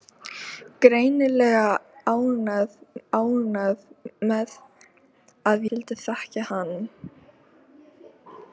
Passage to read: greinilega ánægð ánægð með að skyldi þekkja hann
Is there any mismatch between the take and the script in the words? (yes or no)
no